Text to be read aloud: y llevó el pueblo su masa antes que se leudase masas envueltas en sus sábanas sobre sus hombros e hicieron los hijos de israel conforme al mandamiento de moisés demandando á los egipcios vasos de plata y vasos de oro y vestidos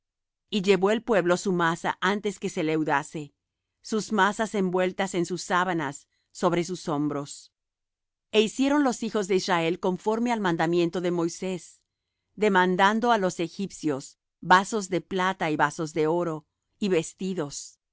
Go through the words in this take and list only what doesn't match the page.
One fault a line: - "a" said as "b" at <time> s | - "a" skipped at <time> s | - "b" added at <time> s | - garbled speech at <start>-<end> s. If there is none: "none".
- "sus" added at 3.8 s